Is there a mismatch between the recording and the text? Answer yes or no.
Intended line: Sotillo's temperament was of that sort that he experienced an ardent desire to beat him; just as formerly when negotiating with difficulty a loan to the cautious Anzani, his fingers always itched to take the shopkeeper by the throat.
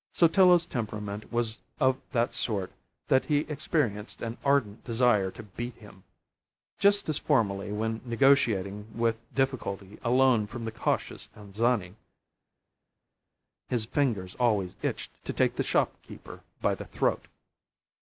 yes